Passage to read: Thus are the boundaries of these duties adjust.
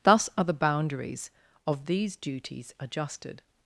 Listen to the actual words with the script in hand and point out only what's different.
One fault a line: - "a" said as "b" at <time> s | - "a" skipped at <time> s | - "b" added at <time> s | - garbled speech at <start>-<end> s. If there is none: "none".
- "adjust" said as "adjusted" at 2.8 s